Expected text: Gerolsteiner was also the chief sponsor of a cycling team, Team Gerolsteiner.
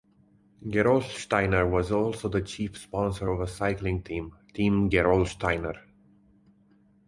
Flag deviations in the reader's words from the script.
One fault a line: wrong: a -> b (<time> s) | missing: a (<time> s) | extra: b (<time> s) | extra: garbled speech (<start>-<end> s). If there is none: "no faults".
no faults